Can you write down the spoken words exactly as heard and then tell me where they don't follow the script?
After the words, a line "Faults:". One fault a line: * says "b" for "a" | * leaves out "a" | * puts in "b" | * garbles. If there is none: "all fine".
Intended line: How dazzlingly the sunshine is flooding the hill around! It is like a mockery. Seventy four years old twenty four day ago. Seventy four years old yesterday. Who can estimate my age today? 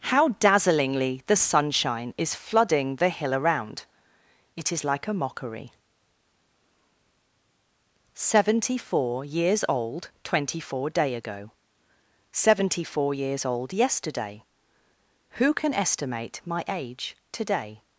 How dazzlingly the sunshine is flooding the hill around! It is like a mockery. Seventy four years old twenty four day ago. Seventy four years old yesterday. Who can estimate my age today?
Faults:
all fine